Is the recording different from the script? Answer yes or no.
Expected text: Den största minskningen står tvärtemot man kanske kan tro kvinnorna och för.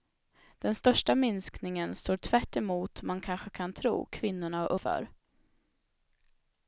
no